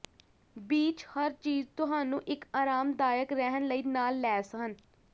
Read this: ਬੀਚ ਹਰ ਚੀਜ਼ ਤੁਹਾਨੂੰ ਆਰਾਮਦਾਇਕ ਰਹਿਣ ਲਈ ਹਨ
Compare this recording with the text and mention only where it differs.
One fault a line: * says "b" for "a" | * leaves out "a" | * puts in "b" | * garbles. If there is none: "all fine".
* puts in "ਇੱਕ"
* puts in "ਨਾਲ ਲੈਸ"